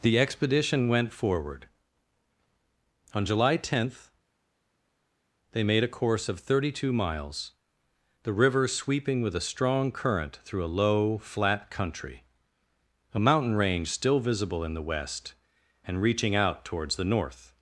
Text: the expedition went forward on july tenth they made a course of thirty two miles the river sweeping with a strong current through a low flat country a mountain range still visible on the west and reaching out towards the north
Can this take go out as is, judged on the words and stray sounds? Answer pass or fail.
fail